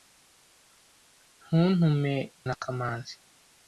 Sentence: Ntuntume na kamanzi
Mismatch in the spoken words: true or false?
false